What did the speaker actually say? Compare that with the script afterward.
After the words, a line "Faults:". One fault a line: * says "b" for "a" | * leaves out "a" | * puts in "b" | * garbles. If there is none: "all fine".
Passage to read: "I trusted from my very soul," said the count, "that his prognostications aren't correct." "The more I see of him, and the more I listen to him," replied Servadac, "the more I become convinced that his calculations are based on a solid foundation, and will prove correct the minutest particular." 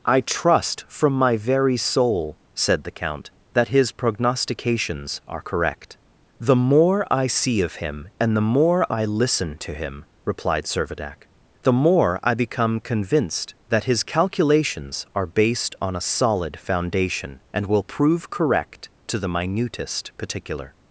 "I trust from my very soul," said the count, "that his prognostications are correct." "The more I see of him, and the more I listen to him," replied Servadac, "the more I become convinced that his calculations are based on a solid foundation, and will prove correct to the minutest particular."
Faults:
* says "trust" for "trusted"
* says "are" for "aren't"
* puts in "to"